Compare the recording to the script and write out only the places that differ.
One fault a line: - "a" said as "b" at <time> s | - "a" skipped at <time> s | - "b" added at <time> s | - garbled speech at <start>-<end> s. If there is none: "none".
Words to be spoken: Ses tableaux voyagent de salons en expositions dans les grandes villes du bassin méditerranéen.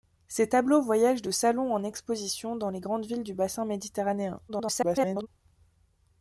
- garbled speech at 4.5-5.3 s